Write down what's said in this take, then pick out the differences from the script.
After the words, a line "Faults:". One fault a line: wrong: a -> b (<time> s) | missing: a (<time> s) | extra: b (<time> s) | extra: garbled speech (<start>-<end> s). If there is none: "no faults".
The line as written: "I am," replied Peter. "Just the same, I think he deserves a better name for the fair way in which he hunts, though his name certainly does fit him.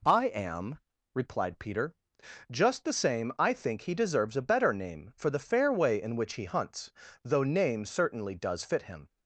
"I am," replied Peter. "Just the same, I think he deserves a better name for the fair way in which he hunts, though name certainly does fit him.
Faults:
missing: his (7.4 s)